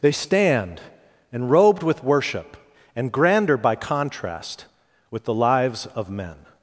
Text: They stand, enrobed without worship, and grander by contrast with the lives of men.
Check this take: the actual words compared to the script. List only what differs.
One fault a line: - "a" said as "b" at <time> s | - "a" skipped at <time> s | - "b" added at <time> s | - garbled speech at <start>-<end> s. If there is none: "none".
- "without" said as "with" at 1.8 s